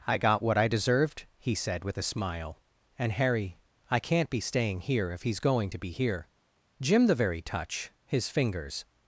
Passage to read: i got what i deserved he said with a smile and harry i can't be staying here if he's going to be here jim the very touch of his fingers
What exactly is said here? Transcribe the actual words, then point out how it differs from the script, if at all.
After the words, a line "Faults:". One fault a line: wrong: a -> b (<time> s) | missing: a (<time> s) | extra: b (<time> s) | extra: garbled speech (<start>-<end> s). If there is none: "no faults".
i got what i deserved he said with a smile and harry i can't be staying here if he's going to be here jim the very touch his fingers
Faults:
missing: of (7.9 s)